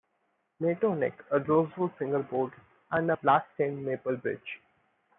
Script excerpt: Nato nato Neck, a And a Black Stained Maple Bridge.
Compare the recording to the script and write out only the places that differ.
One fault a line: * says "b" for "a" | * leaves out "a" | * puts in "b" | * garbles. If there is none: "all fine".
* leaves out "nato"
* puts in "Rosewood Fingerboard"